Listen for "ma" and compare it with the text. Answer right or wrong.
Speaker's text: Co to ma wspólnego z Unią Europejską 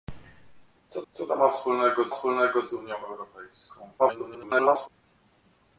right